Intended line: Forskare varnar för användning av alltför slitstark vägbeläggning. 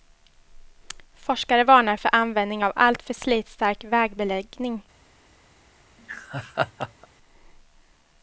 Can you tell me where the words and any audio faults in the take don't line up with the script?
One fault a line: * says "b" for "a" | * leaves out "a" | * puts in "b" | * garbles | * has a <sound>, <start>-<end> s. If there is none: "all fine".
* has a laugh, 6.0-7.1 s